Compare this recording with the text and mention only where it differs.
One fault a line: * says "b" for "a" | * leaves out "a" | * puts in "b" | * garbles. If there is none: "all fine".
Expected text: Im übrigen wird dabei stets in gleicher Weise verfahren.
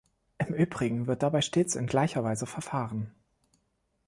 all fine